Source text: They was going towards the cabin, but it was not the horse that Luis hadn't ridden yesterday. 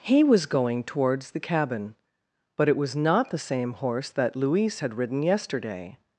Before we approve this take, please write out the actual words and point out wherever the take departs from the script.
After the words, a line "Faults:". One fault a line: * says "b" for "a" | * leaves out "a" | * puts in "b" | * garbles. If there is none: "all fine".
He was going towards the cabin, but it was not the same horse that Luis had ridden yesterday.
Faults:
* says "He" for "They"
* puts in "same"
* says "had" for "hadn't"